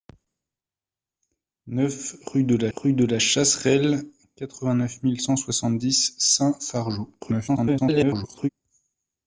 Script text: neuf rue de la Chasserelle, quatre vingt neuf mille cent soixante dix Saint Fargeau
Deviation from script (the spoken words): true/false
true